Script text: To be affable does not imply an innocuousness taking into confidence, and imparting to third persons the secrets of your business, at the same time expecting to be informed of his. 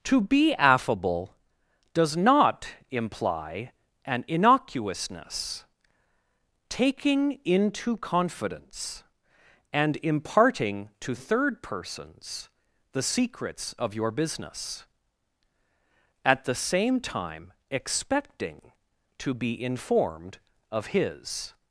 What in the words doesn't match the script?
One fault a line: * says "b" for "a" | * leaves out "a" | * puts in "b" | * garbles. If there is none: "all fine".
all fine